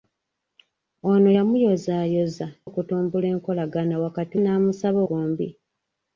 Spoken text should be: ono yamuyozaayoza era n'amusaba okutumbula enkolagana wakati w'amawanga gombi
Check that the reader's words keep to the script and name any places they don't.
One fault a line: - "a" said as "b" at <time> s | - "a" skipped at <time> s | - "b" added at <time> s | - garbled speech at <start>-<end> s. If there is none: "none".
- "era n'amusaba" skipped at 2.5 s
- "w'amawanga" said as "n'amusaba" at 4.4 s